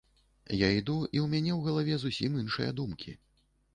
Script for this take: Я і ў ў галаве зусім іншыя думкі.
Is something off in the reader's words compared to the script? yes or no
yes